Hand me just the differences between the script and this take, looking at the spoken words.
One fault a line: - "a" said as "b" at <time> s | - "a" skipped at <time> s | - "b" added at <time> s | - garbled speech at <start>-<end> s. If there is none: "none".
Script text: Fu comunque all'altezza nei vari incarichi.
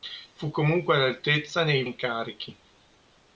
- "vari" skipped at 1.9 s